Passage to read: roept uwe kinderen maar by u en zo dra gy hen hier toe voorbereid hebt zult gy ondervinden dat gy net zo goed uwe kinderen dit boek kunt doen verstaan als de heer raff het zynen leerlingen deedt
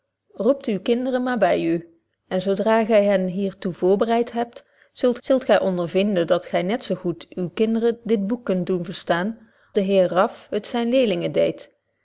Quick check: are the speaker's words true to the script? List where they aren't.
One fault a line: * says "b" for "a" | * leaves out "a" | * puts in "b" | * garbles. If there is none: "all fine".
* puts in "zult"
* leaves out "als"